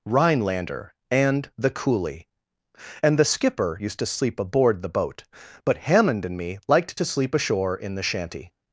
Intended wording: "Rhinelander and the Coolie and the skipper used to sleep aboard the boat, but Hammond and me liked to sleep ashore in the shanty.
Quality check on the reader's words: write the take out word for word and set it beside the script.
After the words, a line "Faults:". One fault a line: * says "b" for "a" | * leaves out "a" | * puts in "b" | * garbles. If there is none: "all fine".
"Rhinelander and the Coolie and the skipper used to sleep aboard the boat, but Hammond and me liked to sleep ashore in the shanty.
Faults:
all fine